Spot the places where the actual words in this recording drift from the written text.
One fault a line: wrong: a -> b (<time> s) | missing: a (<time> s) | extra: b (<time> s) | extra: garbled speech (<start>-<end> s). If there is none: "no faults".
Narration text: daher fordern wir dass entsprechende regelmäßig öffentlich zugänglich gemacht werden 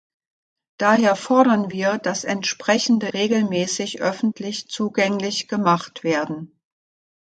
no faults